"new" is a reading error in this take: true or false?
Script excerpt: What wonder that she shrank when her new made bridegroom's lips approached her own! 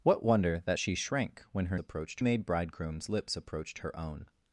true